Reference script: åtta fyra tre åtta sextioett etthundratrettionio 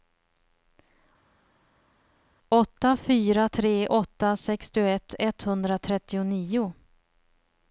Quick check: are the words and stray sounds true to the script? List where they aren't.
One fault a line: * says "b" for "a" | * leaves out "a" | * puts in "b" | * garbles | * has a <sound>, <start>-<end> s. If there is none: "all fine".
all fine